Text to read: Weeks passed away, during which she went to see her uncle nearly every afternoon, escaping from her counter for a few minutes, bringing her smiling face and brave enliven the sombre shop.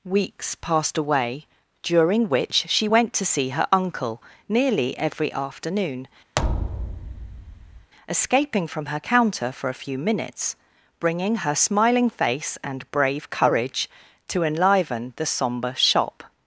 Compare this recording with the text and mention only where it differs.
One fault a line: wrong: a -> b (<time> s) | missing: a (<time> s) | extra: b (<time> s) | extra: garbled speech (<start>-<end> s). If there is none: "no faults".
extra: courage to (13.3 s)